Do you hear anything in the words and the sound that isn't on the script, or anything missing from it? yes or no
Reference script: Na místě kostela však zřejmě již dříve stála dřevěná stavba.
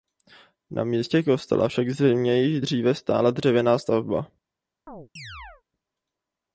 yes